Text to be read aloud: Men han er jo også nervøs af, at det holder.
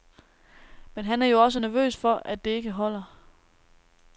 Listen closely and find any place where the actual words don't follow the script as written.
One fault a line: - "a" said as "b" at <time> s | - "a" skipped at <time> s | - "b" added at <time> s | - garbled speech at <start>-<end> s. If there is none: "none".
- "af" said as "for" at 2.0 s
- "ikke" added at 2.5 s